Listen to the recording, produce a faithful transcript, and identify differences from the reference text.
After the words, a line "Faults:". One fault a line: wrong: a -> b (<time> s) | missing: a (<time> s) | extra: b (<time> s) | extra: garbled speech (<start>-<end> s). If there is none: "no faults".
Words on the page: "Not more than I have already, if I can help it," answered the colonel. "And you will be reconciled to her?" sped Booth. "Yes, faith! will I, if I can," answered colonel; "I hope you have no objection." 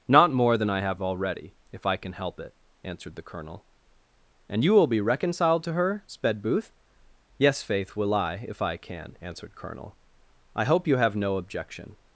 "Not more than I have already, if I can help it," answered the colonel. "And you will be reconciled to her?" sped Booth. "Yes, faith! will I, if I can," answered colonel; "I hope you have no objection."
Faults:
no faults